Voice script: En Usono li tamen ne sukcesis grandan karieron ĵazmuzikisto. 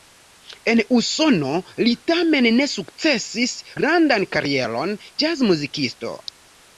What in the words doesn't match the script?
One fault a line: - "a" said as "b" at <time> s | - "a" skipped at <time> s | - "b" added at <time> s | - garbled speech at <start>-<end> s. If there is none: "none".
none